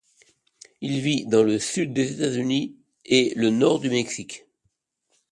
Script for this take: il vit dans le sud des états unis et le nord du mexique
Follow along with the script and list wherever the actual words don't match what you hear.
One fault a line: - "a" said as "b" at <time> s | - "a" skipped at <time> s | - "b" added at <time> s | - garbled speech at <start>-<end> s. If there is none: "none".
none